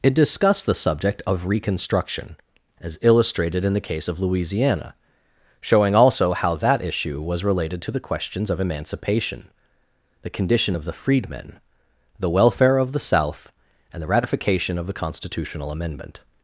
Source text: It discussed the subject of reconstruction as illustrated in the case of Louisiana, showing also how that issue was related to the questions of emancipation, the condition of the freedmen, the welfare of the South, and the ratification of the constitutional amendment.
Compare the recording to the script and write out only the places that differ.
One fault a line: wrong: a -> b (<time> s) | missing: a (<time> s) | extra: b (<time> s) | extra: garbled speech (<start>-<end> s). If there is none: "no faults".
no faults